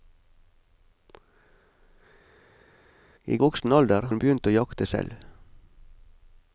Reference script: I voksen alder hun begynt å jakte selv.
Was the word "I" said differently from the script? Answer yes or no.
no